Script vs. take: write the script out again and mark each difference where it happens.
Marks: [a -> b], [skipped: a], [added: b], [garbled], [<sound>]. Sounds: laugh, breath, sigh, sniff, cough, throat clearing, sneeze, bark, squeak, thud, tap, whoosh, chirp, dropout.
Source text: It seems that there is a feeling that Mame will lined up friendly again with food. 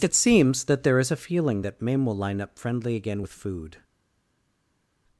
It seems that there is a feeling that Mame will [lined -> line] up friendly again with food.